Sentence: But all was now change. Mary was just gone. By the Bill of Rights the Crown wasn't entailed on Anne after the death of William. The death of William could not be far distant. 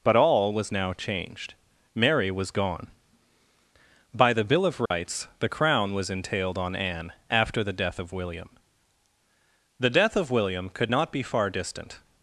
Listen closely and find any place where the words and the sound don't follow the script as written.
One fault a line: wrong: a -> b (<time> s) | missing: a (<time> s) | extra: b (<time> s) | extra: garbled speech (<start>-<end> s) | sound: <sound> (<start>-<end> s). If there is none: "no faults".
wrong: change -> changed (0.9 s)
missing: just (2.5 s)
sound: dropout (4.9-4.9 s)
wrong: wasn't -> was (5.9 s)